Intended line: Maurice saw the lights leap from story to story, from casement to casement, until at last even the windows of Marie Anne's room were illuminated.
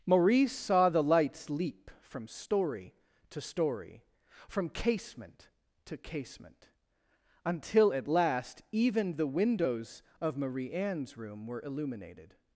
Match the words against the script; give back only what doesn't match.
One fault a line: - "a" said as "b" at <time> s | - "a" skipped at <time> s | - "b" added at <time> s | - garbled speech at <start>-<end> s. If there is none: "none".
none